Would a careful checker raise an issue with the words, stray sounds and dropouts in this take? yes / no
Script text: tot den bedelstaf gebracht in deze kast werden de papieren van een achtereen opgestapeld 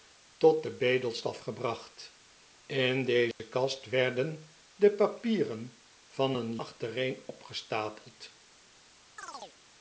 yes